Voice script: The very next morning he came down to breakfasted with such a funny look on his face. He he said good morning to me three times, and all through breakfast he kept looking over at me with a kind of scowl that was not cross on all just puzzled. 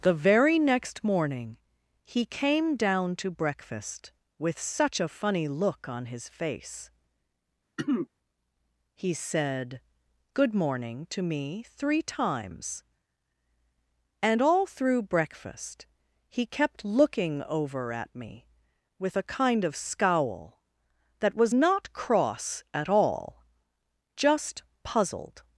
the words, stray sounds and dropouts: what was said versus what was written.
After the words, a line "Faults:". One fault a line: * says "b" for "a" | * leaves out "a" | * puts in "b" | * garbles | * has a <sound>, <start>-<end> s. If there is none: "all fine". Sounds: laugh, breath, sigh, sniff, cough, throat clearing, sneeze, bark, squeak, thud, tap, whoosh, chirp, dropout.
The very next morning he came down to breakfast with such a funny look on his face. He said good morning to me three times, and all through breakfast he kept looking over at me with a kind of scowl that was not cross at all just puzzled.
Faults:
* says "breakfast" for "breakfasted"
* has a throat clearing, 7.8-8.1 s
* leaves out "he"
* says "at" for "on"